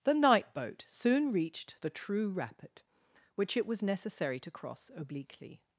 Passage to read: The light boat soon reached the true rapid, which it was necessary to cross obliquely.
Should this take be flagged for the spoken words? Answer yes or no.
yes